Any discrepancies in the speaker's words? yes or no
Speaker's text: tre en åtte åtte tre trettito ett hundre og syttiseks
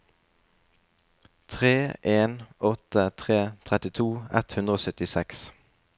yes